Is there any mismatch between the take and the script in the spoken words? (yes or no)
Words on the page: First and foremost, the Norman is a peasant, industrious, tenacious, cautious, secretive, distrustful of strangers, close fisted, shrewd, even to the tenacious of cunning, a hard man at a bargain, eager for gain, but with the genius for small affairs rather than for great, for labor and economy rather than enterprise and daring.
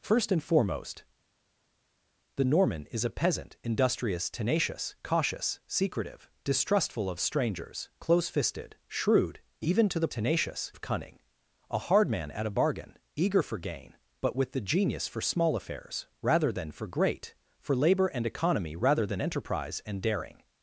no